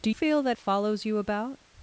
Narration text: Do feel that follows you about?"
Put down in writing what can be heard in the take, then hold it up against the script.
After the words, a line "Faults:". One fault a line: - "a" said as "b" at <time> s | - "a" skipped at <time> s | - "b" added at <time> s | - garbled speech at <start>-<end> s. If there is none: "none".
Do feel that follows you about?"
Faults:
none